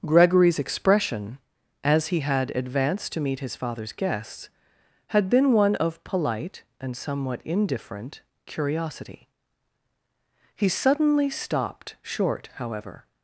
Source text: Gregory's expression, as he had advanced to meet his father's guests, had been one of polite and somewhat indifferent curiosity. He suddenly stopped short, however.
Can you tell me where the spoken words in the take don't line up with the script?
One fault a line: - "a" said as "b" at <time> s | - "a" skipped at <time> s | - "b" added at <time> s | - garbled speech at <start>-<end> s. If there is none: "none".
none